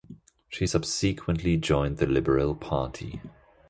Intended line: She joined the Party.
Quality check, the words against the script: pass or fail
fail